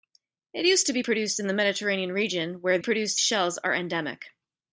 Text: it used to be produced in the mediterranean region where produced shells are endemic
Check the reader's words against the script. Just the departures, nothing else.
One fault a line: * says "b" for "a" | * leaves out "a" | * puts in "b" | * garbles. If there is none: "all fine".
all fine